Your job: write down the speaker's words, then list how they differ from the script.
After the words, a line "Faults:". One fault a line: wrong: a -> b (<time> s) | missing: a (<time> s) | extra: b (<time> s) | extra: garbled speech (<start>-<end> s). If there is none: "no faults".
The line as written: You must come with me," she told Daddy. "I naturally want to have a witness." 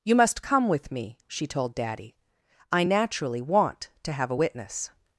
You must come with me," she told Daddy. "I naturally want to have a witness."
Faults:
no faults